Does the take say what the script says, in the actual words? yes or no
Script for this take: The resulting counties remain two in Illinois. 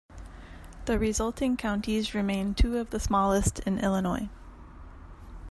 no